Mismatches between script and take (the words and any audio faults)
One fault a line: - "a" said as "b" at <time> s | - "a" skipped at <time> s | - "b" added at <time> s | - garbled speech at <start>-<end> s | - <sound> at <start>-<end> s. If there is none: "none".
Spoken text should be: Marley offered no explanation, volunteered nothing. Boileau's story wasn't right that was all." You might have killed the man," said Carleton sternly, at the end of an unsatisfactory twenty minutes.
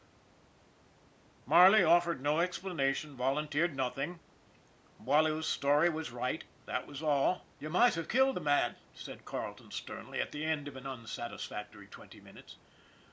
- "wasn't" said as "was" at 5.9 s